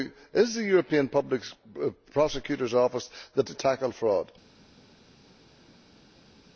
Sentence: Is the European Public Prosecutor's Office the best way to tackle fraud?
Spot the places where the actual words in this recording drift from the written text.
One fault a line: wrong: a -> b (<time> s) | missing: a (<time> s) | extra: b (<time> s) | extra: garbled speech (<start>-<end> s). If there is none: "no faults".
missing: best way (3.4 s)